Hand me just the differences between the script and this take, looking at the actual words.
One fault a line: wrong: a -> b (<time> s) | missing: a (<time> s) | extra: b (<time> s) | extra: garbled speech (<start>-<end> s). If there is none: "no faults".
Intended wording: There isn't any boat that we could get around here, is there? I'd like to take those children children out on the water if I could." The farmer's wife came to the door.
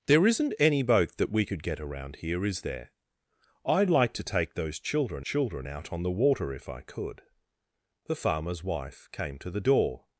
no faults